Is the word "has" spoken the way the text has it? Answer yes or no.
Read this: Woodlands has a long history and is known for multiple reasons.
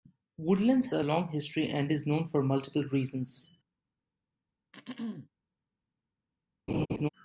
no